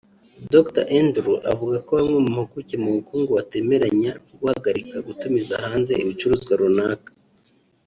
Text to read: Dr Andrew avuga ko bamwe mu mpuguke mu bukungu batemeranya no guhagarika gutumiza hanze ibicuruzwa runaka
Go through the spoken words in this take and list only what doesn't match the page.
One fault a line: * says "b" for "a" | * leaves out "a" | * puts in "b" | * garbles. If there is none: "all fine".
all fine